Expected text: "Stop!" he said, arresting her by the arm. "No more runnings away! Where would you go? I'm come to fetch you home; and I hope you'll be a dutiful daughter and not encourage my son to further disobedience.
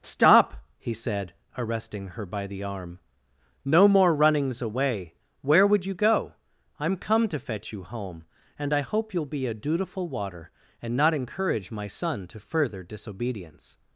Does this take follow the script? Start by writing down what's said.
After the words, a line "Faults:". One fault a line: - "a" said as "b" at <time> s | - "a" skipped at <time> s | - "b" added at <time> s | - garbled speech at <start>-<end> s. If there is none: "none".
"Stop!" he said, arresting her by the arm. "No more runnings away! Where would you go? I'm come to fetch you home; and I hope you'll be a dutiful water and not encourage my son to further disobedience.
Faults:
- "daughter" said as "water" at 10.1 s